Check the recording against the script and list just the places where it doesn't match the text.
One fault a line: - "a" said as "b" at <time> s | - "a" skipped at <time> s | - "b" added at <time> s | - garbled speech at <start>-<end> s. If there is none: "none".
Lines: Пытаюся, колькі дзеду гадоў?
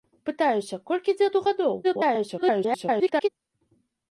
- garbled speech at 1.8-3.3 s